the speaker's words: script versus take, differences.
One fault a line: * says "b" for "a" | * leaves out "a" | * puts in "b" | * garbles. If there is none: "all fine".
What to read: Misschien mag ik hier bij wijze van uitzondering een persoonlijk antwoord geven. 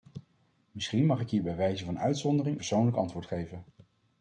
* leaves out "een"